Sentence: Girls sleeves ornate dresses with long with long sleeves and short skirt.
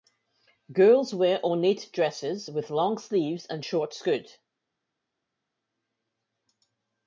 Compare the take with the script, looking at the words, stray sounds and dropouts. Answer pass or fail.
fail